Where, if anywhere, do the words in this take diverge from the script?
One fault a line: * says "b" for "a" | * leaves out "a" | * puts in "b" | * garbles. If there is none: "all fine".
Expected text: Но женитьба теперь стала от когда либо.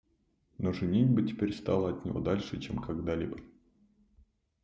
* puts in "него дальше чем"